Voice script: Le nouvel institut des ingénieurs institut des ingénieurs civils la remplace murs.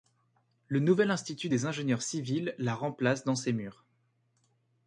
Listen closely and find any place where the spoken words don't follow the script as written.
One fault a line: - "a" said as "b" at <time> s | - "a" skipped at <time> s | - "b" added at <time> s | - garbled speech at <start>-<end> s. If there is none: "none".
- "institut des ingénieurs" skipped at 2.0 s
- "dans ses" added at 3.3 s